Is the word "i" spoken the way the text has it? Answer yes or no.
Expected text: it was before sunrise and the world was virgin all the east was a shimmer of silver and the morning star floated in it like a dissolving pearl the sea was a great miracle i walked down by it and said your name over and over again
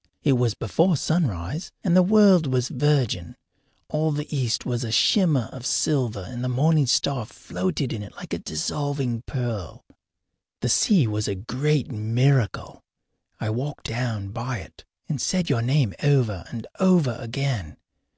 yes